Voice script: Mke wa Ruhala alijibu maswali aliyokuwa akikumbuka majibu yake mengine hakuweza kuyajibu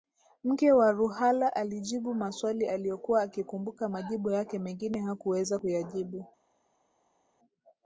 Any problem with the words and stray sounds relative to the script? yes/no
no